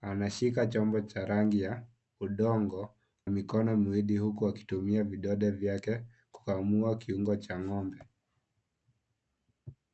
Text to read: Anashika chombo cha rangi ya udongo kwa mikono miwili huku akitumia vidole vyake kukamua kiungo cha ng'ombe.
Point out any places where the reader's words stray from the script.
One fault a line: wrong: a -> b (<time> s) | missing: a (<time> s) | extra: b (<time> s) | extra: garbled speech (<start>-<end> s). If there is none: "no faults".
missing: kwa (3.0 s)